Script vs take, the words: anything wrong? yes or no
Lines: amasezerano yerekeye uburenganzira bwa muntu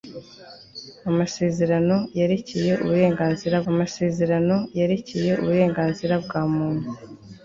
yes